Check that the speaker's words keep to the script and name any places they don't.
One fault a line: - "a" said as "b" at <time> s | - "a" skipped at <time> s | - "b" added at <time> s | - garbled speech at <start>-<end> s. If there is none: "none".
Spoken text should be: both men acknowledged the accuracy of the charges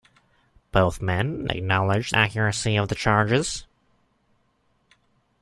- "the" skipped at 2.1 s